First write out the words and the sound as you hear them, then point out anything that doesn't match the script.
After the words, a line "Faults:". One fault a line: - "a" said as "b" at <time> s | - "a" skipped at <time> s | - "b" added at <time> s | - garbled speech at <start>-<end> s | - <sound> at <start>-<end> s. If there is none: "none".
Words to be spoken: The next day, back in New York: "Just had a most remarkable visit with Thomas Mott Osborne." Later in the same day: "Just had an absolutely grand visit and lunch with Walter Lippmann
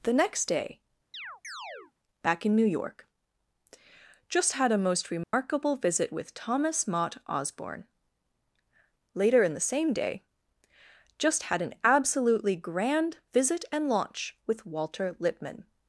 The next day, back in New York: "Just had a most remarkable visit with Thomas Mott Osborne." Later in the same day: "Just had an absolutely grand visit and launch with Walter Lippmann
Faults:
- chirp at 1.1-1.9 s
- dropout at 5.2-5.3 s
- "lunch" said as "launch" at 13.9 s